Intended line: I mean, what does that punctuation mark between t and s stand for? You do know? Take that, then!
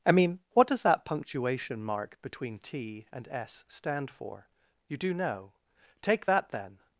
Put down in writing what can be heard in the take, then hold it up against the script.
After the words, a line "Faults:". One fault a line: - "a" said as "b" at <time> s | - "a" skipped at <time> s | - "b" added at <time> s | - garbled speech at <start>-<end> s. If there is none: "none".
I mean, what does that punctuation mark between t and s stand for? You do know? Take that, then!
Faults:
none